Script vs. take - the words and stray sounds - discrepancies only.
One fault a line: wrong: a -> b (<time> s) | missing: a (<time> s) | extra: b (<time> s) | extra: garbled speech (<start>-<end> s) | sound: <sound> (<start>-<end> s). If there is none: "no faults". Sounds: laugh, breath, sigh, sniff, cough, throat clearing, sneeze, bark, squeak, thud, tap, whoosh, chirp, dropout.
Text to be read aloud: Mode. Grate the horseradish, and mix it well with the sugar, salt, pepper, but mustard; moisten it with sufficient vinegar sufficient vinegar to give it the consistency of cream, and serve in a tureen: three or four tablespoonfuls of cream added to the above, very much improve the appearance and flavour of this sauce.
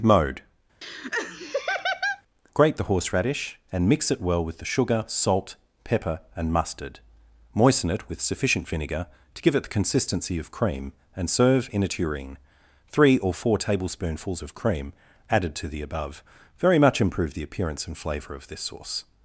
sound: laugh (0.8-2.2 s)
wrong: but -> and (6.4 s)
missing: sufficient vinegar (9.1 s)